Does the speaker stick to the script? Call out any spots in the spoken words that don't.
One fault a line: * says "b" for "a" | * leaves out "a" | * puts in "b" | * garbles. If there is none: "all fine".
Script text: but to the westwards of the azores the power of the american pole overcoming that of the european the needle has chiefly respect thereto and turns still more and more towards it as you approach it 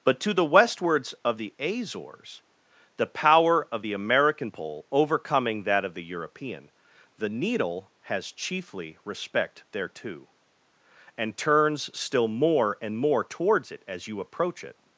all fine